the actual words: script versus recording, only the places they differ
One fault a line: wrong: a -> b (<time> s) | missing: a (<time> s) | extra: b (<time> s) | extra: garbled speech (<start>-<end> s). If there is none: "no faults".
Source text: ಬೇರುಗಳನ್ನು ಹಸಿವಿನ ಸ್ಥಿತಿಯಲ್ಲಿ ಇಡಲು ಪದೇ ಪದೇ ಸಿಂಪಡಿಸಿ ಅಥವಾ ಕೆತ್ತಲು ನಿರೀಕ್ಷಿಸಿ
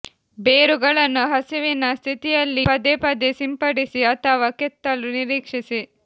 missing: ಇಡಲು (2.6 s)